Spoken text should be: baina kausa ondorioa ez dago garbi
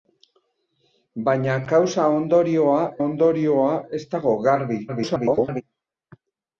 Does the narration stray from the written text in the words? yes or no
yes